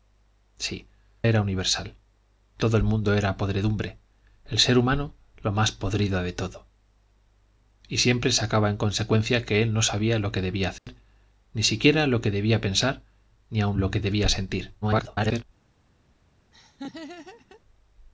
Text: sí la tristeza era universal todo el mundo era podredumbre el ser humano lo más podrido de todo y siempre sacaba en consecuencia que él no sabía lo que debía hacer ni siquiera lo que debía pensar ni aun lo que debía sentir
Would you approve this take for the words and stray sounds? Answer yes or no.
no